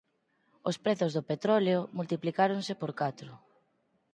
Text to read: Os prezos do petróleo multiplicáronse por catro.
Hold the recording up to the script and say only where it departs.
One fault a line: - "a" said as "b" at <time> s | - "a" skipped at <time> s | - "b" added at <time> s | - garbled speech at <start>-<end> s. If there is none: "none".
none